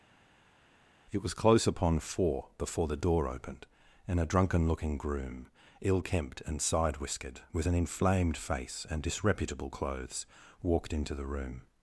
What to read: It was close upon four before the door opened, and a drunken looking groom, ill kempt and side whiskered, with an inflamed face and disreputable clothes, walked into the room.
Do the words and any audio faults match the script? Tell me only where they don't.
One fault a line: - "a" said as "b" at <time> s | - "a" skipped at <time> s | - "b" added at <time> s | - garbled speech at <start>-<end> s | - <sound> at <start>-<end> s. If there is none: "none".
none